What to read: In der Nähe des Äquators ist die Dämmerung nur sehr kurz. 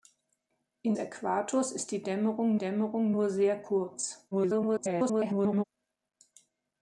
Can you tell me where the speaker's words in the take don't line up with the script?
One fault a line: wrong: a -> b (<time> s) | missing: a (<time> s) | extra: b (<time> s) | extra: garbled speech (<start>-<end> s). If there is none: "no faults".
missing: der Nähe des (0.9 s)
extra: Dämmerung (2.6 s)
extra: garbled speech (4.3-5.6 s)